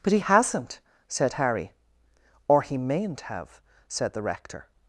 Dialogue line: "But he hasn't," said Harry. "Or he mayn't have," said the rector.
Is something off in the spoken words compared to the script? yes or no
no